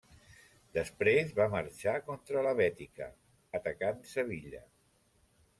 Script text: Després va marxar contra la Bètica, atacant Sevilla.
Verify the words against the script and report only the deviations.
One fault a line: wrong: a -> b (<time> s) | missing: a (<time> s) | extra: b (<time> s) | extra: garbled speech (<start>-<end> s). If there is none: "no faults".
no faults